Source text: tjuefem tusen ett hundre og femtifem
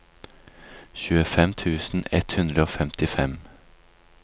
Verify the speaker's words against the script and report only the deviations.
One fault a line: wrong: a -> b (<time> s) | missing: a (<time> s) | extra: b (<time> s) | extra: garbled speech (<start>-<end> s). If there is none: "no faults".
no faults